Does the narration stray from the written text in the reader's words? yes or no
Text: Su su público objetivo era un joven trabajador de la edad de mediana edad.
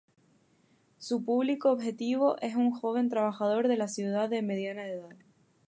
yes